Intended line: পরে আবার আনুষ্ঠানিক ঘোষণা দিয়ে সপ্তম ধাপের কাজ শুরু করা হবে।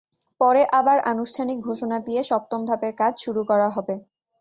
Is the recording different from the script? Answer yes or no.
no